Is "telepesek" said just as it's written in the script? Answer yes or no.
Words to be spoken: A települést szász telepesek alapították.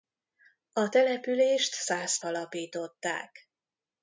no